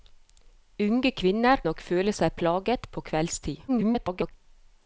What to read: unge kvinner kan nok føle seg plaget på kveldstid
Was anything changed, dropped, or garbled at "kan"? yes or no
yes